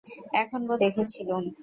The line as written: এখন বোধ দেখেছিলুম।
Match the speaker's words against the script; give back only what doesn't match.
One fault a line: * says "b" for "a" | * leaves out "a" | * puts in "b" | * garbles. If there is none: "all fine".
all fine